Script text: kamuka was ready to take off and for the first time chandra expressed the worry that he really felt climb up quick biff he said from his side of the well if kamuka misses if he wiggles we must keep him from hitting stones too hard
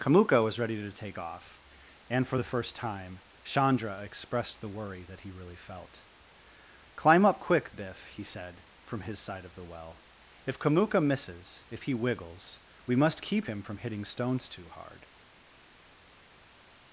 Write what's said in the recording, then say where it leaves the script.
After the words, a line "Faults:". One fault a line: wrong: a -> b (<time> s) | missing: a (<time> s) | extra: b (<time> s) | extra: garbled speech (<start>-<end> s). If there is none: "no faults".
kamuka was ready to take off and for the first time chandra expressed the worry that he really felt climb up quick biff he said from his side of the well if kamuka misses if he wiggles we must keep him from hitting stones too hard
Faults:
no faults